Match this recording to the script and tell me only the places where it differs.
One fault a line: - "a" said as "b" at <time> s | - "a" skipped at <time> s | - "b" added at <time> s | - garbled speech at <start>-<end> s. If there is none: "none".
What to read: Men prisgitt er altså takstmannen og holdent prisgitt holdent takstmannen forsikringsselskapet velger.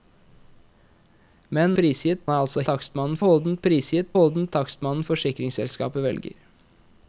none